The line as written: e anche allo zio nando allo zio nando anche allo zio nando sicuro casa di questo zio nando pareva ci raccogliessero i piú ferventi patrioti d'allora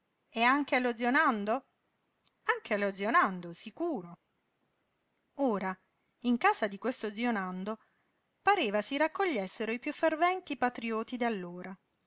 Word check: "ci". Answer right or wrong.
wrong